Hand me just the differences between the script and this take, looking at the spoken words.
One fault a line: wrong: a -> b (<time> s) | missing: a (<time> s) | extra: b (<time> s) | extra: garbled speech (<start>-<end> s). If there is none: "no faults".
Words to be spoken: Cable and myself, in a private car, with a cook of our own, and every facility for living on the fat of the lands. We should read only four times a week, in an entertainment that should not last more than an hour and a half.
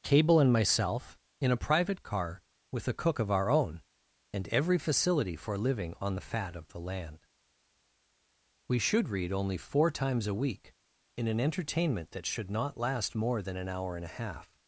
wrong: lands -> land (6.8 s)